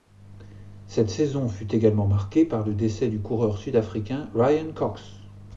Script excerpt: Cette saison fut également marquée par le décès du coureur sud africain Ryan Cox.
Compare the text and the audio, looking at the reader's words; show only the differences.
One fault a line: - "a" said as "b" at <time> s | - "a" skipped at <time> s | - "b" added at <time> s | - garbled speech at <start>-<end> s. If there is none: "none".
none